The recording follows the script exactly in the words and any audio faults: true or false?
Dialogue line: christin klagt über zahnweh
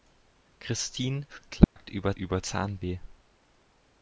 false